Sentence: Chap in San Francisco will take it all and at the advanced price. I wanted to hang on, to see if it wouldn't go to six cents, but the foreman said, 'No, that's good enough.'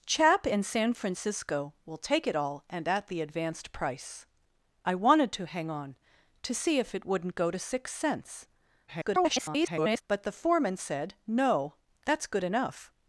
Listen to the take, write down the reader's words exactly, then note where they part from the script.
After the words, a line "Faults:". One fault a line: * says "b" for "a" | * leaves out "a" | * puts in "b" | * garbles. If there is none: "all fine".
Chap in San Francisco will take it all and at the advanced price. I wanted to hang on, to see if it wouldn't go to six cents, [garbled] but the foreman said, 'No, that's good enough.'
Faults:
* garbles